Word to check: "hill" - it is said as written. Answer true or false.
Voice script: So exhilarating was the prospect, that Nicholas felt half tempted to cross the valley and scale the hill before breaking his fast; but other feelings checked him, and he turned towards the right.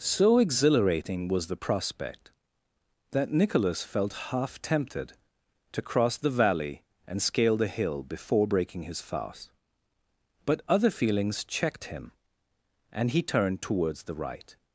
true